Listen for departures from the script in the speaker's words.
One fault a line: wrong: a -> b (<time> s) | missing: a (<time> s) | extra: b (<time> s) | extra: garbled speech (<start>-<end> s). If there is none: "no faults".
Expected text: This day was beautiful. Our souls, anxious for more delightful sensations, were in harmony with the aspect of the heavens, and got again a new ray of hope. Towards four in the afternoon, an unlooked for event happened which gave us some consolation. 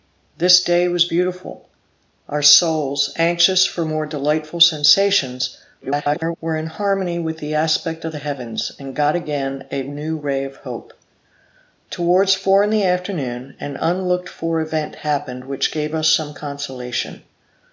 extra: garbled speech (5.8-6.4 s)